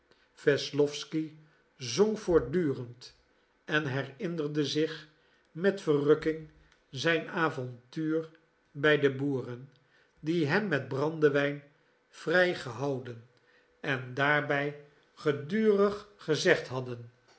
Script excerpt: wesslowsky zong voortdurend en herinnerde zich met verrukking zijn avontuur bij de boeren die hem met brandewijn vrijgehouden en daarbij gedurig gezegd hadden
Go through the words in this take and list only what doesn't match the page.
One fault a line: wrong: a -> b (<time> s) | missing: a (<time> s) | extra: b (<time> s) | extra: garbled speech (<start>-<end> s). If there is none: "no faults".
no faults